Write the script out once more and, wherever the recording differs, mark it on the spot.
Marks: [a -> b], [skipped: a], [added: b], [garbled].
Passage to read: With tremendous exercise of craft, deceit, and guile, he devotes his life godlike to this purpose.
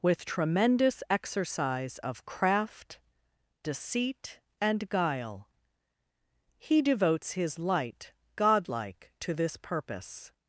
With tremendous exercise of craft, deceit, and guile, he devotes his [life -> light] godlike to this purpose.